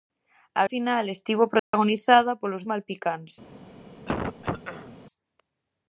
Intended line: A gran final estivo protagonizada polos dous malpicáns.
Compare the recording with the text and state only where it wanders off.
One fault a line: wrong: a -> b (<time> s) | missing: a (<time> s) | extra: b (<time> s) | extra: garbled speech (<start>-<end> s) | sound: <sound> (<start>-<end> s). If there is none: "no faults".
missing: gran (0.6 s)
sound: dropout (1.6-1.7 s)
missing: dous (2.6 s)
sound: throat clearing (4.1-5.0 s)